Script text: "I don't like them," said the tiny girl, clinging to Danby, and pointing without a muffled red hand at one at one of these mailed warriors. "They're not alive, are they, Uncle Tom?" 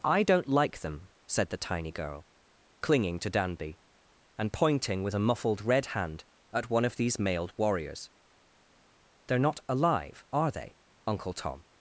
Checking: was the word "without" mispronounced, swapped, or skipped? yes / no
yes